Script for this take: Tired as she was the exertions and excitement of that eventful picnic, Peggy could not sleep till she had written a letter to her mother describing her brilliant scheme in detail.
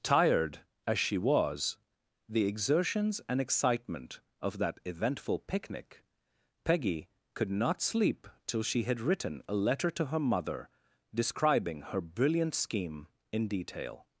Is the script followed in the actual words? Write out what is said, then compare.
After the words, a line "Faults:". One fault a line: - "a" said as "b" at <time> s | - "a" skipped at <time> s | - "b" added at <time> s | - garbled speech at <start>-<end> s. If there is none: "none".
Tired as she was the exertions and excitement of that eventful picnic, Peggy could not sleep till she had written a letter to her mother describing her brilliant scheme in detail.
Faults:
none